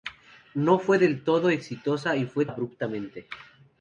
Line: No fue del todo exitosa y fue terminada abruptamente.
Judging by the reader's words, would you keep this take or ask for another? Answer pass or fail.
fail